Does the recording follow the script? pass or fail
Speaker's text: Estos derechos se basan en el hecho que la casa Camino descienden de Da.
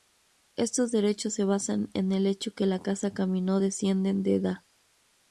pass